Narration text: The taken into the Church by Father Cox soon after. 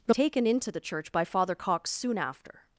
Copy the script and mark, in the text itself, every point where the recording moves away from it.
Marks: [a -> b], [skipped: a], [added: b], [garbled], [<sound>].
The taken into the Church by Father Cox soon after.